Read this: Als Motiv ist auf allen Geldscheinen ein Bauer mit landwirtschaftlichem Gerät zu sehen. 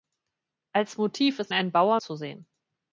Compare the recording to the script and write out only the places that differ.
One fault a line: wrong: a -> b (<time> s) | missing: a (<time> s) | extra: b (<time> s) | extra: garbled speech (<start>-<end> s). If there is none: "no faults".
missing: auf allen Geldscheinen (1.5 s)
missing: mit landwirtschaftlichem Gerät (2.0 s)